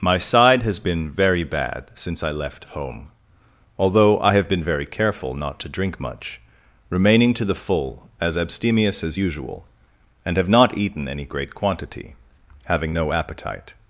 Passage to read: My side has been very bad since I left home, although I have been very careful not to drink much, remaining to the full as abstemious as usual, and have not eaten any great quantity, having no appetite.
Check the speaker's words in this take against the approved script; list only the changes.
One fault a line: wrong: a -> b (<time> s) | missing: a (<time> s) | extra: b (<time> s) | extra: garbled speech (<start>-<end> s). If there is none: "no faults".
no faults